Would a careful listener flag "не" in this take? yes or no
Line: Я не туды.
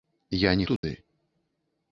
no